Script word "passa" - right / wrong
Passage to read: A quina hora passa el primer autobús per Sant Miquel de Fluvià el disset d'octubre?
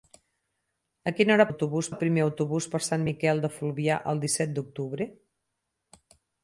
wrong